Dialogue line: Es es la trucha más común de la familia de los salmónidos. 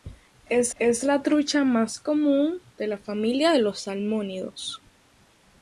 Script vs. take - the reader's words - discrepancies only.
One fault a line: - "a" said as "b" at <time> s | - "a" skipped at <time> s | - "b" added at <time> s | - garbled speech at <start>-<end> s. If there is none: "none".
none